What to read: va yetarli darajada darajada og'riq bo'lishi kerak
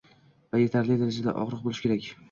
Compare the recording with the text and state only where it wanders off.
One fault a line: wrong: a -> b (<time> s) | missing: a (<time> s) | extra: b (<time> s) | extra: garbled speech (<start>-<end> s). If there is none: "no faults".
missing: darajada (1.4 s)